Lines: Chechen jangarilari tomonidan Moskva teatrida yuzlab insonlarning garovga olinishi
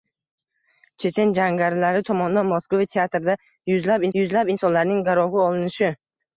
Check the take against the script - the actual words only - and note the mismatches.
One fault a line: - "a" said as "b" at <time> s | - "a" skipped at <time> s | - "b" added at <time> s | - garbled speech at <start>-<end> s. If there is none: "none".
- "yuzlab" added at 4.2 s